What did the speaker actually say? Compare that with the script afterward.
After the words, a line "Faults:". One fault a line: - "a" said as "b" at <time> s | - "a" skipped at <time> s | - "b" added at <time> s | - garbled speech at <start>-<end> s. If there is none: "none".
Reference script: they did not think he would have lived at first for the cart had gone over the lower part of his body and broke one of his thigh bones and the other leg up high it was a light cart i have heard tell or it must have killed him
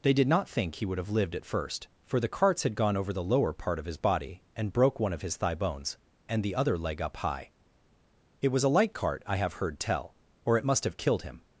they did not think he would have lived at first for the carts had gone over the lower part of his body and broke one of his thigh bones and the other leg up high it was a light cart i have heard tell or it must have killed him
Faults:
- "cart" said as "carts" at 2.3 s